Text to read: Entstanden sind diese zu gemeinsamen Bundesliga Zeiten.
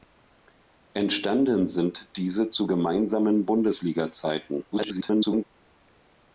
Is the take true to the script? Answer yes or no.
no